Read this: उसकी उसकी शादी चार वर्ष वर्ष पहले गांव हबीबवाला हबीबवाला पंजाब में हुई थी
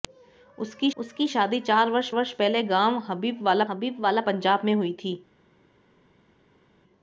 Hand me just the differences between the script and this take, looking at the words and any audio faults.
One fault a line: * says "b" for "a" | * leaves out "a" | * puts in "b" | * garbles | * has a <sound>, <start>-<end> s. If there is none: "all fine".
all fine